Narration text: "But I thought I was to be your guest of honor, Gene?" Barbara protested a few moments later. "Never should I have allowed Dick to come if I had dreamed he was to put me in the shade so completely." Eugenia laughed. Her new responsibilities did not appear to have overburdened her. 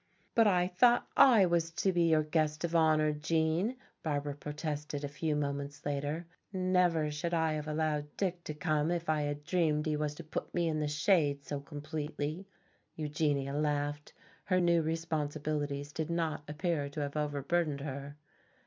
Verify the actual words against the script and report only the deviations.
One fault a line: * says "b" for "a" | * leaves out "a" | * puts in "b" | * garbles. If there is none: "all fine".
all fine